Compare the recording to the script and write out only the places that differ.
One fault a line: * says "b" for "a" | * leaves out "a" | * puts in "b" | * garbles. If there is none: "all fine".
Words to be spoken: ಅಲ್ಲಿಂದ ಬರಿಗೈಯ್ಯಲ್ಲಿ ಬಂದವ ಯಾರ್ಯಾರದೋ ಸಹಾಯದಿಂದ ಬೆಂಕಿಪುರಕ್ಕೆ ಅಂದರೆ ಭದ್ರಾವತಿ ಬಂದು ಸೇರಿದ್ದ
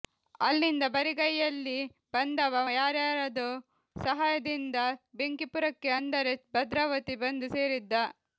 all fine